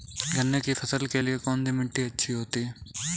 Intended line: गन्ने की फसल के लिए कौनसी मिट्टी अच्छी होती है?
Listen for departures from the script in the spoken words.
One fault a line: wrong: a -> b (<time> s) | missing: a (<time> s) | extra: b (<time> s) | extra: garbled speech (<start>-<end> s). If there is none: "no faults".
no faults